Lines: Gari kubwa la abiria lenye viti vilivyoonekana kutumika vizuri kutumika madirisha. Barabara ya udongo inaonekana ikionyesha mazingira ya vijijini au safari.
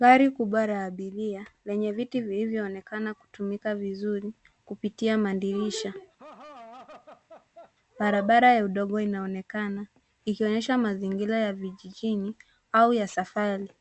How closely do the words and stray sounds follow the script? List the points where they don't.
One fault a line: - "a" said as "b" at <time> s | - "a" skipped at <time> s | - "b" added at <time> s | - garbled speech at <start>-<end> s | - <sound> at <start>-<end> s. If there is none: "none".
- "kutumika" said as "kupitia" at 4.7 s
- laugh at 6.2-7.7 s
- "ya" added at 12.9 s